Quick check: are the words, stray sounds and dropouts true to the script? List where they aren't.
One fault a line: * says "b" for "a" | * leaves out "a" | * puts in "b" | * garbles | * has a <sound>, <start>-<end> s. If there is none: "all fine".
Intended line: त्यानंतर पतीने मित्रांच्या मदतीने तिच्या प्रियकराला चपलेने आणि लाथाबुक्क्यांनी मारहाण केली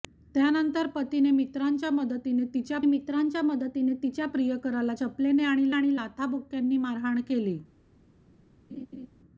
* puts in "मित्रांच्या मदतीने तिच्या"
* puts in "आणि"
* has a laugh, 8.7-9.1 s